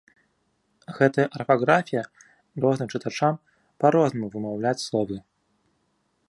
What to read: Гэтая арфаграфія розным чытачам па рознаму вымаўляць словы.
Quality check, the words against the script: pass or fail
pass